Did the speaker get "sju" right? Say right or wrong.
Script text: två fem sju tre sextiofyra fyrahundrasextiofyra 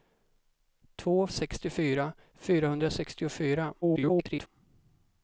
wrong